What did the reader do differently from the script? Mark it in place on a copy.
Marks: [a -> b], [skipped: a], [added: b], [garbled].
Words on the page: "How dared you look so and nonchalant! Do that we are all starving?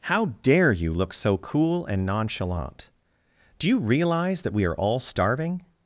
"How [dared -> dare] you look so [added: cool] and nonchalant! Do [added: you realize] that we are all starving?